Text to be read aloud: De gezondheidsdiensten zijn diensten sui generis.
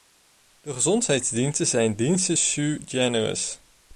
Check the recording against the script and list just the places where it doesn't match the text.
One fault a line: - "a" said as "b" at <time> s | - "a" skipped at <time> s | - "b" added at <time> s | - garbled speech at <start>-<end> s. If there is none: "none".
none